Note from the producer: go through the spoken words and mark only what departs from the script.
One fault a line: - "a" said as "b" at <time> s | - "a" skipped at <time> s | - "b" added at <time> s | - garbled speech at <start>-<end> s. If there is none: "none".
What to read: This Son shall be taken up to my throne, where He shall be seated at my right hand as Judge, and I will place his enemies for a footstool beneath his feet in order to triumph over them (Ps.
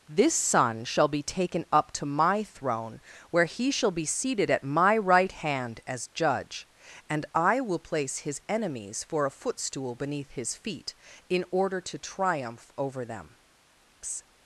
- "Ps" skipped at 13.4 s